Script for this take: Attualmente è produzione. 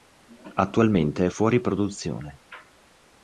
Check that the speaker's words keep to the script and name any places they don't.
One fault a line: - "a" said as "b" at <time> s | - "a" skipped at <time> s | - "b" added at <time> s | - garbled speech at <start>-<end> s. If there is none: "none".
- "fuori" added at 1.3 s